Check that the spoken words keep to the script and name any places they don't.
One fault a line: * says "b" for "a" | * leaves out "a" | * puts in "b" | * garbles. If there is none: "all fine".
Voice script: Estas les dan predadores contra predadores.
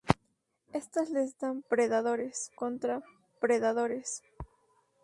all fine